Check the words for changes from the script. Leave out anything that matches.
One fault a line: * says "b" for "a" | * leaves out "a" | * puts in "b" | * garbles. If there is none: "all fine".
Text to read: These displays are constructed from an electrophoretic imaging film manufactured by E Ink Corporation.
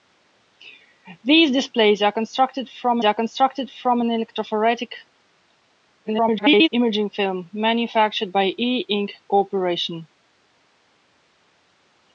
* puts in "are constructed from"
* garbles